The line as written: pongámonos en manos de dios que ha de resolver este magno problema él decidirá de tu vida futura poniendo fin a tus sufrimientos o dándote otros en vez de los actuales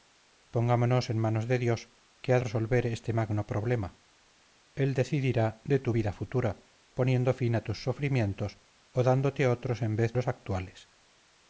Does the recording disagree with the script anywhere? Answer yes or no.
yes